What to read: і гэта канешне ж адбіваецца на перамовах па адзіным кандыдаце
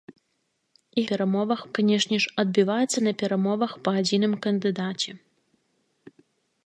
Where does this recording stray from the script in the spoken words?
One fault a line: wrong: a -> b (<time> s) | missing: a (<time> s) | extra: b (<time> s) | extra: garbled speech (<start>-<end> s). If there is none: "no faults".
wrong: гэта -> перамовах (1.1 s)